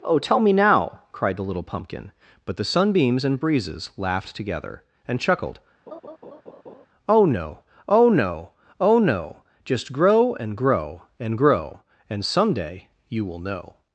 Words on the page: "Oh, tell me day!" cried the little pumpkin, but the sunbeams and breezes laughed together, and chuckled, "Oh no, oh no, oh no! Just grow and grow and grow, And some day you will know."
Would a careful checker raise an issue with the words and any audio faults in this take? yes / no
yes